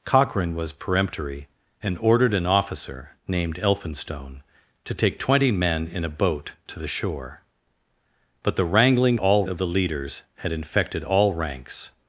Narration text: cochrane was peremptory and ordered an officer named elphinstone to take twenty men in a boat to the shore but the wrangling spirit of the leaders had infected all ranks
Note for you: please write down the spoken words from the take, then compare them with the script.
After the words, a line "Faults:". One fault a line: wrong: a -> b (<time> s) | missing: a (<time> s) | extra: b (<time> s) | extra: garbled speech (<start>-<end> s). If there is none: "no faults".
cochrane was peremptory and ordered an officer named elphinstone to take twenty men in a boat to the shore but the wrangling all of the leaders had infected all ranks
Faults:
wrong: spirit -> all (9.2 s)